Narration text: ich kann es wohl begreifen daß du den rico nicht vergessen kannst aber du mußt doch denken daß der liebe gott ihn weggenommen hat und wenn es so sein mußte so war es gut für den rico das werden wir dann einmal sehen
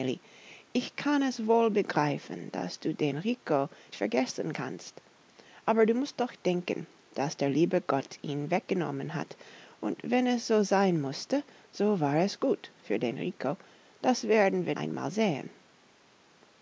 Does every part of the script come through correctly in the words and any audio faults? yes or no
no